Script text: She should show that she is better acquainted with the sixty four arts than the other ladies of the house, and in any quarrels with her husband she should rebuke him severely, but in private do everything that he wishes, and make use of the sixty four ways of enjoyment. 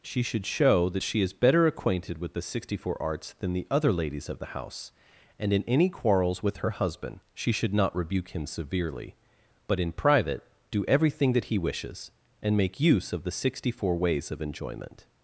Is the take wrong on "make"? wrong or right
right